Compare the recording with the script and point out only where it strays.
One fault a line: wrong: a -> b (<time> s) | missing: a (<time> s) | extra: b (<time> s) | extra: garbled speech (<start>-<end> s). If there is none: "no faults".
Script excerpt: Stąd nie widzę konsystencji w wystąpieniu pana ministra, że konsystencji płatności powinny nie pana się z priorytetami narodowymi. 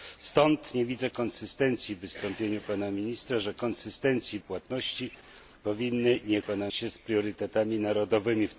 no faults